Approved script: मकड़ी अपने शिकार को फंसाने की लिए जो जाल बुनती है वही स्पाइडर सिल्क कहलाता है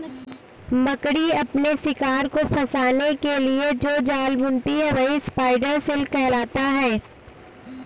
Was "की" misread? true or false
true